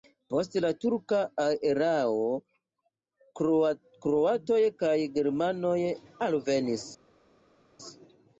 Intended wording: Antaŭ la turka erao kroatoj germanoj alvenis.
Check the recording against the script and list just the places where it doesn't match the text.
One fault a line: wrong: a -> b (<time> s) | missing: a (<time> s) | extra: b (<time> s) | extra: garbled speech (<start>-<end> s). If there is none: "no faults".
wrong: Antaŭ -> Post (0.3 s)
extra: kaj (4.8 s)